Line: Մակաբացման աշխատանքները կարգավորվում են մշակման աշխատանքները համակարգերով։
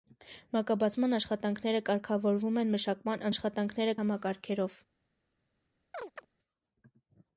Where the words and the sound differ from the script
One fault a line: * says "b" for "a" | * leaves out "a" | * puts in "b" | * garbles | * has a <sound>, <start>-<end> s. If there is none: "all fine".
* has a chirp, 5.9-6.3 s